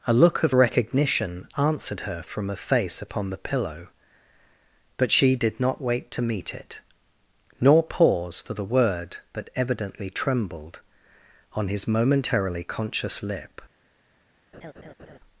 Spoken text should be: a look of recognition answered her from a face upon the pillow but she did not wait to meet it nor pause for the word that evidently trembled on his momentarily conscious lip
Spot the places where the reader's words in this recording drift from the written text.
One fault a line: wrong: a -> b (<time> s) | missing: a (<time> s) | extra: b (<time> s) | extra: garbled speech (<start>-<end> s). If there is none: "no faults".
no faults